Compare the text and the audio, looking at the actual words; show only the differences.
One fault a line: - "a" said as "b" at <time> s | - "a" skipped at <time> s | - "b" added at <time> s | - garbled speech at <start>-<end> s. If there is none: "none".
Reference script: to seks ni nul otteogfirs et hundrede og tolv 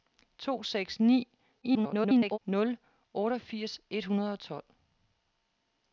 - garbled speech at 1.6-2.4 s